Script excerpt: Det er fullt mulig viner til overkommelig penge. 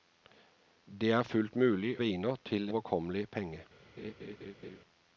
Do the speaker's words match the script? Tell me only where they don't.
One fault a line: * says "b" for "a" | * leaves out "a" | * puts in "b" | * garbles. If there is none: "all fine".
all fine